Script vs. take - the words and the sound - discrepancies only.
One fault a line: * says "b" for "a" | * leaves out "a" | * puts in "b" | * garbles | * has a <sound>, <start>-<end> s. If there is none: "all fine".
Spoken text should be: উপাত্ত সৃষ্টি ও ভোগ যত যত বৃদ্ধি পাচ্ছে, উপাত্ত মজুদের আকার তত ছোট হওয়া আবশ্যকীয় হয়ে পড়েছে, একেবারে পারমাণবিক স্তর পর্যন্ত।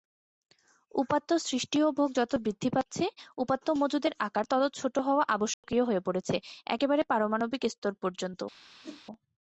* leaves out "যত"
* has a dropout, 5.5-5.6 s
* has a whoosh, 8.8-9.0 s